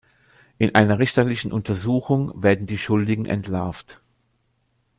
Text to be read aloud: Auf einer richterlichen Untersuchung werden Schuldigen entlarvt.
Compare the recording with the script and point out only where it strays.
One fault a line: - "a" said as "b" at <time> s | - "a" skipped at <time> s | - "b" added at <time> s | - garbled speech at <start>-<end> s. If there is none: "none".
- "Auf" said as "In" at 0.6 s
- "die" added at 2.7 s